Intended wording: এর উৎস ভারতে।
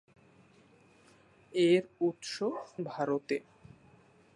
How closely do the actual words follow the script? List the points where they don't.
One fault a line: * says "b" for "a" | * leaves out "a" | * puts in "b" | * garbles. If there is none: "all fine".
all fine